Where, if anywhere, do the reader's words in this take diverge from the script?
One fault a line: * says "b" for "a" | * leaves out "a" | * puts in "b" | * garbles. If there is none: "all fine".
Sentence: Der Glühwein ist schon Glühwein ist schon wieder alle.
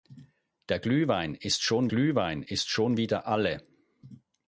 all fine